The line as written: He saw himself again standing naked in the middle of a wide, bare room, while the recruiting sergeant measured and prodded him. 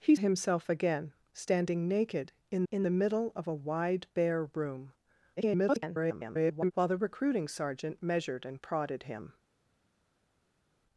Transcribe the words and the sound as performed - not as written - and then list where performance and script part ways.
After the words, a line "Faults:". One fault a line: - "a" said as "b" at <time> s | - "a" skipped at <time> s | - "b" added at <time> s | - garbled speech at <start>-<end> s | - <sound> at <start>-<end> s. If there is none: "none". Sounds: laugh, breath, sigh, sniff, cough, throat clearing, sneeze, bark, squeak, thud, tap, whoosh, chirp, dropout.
He himself again standing naked in in the middle of a wide, bare room, [garbled] while the recruiting sergeant measured and prodded him.
Faults:
- "saw" skipped at 0.1 s
- "in" added at 2.7 s
- garbled speech at 5.4-6.7 s